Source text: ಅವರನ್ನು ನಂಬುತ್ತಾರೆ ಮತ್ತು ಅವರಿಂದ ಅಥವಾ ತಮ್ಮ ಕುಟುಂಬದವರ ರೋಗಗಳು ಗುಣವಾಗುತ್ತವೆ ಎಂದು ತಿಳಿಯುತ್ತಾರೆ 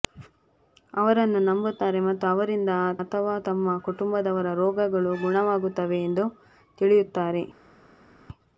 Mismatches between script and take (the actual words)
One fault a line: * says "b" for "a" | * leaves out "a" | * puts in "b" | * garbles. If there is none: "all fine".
all fine